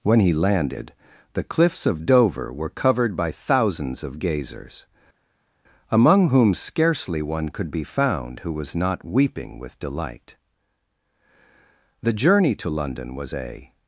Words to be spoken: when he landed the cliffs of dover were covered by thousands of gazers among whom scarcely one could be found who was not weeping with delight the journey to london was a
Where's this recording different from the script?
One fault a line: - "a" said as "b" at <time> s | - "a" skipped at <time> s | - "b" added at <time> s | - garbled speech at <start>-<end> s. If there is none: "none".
none